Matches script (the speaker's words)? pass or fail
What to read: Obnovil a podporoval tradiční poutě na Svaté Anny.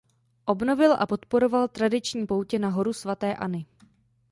fail